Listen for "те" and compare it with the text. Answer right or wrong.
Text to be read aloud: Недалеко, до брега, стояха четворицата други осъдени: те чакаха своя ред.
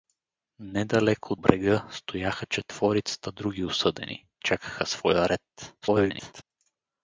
wrong